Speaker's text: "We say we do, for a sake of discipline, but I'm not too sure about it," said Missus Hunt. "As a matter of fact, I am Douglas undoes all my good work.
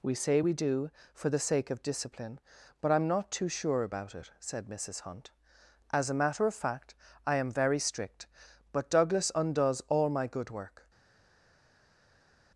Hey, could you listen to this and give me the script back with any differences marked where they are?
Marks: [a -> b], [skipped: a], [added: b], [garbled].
"We say we do, for [a -> the] sake of discipline, but I'm not too sure about it," said Missus Hunt. "As a matter of fact, I am [added: very strict but] Douglas undoes all my good work.